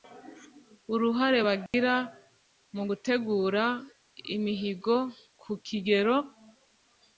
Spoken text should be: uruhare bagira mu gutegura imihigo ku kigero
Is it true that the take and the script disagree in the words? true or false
false